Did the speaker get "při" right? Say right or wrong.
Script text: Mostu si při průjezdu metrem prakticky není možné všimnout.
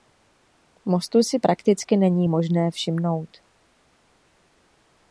wrong